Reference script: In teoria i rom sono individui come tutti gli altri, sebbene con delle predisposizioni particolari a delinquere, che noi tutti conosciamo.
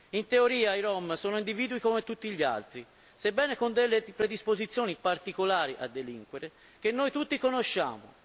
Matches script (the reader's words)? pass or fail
pass